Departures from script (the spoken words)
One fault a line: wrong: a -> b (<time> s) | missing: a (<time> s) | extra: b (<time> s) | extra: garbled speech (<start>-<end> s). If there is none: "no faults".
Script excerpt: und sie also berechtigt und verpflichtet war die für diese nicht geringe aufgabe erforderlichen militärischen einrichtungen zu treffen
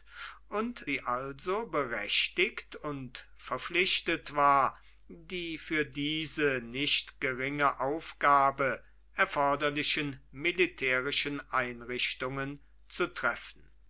no faults